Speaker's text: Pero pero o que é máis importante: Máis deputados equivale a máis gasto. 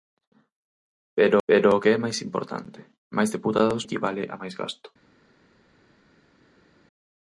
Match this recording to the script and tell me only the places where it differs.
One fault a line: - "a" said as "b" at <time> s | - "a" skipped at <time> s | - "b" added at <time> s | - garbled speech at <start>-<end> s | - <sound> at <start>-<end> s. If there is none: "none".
none